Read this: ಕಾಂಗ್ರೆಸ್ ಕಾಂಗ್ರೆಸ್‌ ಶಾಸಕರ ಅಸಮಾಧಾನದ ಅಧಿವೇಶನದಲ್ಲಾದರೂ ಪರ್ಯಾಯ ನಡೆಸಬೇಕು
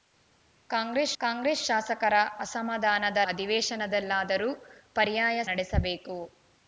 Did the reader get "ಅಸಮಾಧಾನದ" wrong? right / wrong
right